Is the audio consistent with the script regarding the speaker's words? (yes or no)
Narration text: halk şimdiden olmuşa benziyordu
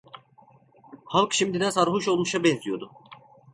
no